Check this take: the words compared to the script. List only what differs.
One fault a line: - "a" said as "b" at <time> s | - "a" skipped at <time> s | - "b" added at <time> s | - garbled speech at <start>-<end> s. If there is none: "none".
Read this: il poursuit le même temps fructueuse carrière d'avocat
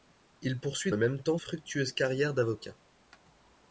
none